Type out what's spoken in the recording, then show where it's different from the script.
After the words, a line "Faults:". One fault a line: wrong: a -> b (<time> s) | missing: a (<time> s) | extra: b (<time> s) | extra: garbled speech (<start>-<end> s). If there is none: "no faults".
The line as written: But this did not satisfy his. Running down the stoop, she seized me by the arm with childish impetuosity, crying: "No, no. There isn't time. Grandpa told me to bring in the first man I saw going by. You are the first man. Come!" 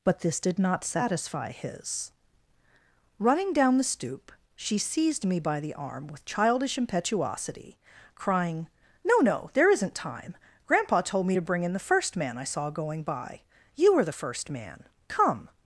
But this did not satisfy his. Running down the stoop, she seized me by the arm with childish impetuosity, crying: "No, no. There isn't time. Grandpa told me to bring in the first man I saw going by. You are the first man. Come!"
Faults:
no faults